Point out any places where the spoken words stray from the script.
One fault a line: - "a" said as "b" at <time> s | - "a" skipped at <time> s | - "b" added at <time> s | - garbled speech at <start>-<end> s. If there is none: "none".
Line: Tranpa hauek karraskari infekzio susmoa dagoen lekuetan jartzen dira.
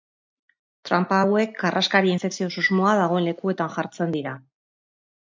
none